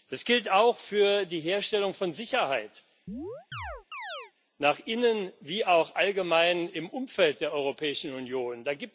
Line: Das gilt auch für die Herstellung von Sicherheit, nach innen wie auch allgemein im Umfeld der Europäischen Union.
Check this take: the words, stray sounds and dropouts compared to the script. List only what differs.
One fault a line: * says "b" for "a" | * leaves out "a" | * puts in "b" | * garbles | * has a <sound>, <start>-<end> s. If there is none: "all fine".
* has a chirp, 3.1-4.3 s